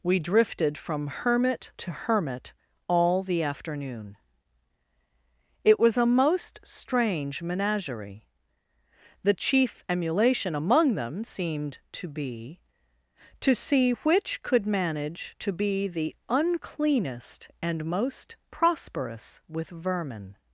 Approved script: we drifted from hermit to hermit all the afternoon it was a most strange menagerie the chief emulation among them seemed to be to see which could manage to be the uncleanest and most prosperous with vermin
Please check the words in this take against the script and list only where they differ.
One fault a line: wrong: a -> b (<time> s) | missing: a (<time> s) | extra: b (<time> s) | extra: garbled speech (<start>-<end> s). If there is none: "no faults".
no faults